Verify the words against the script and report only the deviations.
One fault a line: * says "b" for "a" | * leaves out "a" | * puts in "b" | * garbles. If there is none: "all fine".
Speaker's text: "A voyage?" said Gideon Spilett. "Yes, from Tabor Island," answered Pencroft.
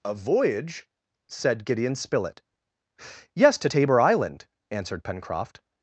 * says "to" for "from"